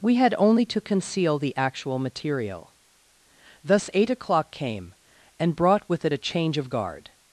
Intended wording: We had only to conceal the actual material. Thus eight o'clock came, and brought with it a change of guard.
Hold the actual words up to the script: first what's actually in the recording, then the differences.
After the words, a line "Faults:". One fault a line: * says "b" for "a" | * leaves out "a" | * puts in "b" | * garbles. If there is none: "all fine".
We had only to conceal the actual material. Thus eight o'clock came, and brought with it a change of guard.
Faults:
all fine